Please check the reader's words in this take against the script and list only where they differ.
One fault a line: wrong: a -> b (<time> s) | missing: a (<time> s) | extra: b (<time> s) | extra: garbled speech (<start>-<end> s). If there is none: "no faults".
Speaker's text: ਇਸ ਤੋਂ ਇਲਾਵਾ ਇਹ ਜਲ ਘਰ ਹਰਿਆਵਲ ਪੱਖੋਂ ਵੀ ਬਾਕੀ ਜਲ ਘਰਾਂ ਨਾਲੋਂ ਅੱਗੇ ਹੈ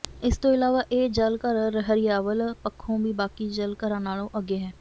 no faults